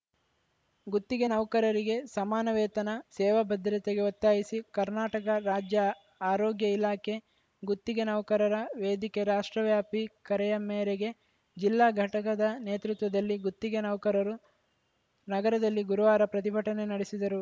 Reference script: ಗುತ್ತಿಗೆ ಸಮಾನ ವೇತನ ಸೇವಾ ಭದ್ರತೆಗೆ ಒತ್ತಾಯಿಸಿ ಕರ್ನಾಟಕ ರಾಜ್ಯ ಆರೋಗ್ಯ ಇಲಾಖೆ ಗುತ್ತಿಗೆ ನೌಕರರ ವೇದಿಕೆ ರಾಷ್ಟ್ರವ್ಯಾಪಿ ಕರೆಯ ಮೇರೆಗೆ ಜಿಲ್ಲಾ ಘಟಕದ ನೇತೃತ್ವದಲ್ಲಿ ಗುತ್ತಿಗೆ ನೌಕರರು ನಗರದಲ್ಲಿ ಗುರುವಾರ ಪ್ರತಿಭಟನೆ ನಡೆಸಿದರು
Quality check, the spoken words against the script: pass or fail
fail